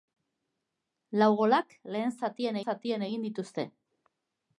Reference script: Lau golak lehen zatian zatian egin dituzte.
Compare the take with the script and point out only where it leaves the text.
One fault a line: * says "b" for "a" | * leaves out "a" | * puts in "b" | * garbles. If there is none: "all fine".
all fine